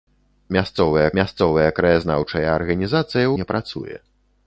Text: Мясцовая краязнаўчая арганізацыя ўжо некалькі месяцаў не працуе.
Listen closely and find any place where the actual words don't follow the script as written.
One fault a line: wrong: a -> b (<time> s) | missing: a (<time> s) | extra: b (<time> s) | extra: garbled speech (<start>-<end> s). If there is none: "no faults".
extra: мясцовая (1.2 s)
missing: ўжо некалькі месяцаў (3.2 s)